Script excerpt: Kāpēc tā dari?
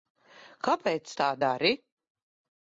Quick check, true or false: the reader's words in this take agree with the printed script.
true